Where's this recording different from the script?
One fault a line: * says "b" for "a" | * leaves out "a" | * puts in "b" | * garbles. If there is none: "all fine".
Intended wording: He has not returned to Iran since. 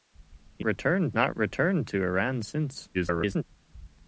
* says "returned" for "has"
* garbles